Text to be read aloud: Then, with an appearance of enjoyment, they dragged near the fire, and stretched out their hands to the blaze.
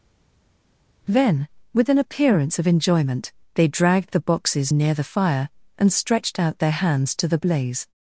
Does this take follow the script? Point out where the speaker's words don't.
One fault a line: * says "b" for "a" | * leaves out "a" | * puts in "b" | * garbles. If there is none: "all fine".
* puts in "the boxes"